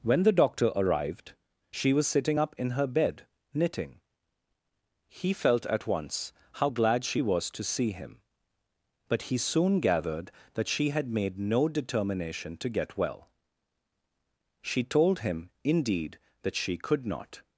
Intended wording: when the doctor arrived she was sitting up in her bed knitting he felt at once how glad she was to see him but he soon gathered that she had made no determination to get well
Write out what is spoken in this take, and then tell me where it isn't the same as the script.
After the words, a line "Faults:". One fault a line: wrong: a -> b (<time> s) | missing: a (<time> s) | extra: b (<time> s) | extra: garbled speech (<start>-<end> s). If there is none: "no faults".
when the doctor arrived she was sitting up in her bed knitting he felt at once how glad she was to see him but he soon gathered that she had made no determination to get well she told him indeed that she could not
Faults:
extra: she told him indeed that she could not (14.6 s)